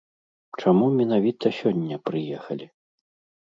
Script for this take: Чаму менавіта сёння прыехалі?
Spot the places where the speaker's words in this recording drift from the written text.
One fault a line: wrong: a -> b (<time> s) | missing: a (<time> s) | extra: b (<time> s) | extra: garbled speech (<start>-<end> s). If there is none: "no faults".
no faults